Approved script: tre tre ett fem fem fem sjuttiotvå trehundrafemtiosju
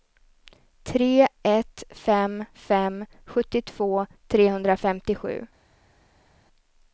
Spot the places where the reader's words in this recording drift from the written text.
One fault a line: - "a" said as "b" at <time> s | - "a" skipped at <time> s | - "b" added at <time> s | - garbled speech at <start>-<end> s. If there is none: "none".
- "tre" skipped at 1.3 s
- "fem" skipped at 3.0 s